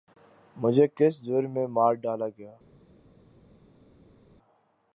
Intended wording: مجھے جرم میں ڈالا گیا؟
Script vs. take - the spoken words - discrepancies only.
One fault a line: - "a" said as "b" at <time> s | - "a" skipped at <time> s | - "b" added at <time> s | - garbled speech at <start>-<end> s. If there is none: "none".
- "کس" added at 1.0 s
- "مار" added at 1.7 s